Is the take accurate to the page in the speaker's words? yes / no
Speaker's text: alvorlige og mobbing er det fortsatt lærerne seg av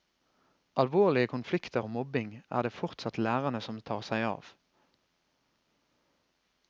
no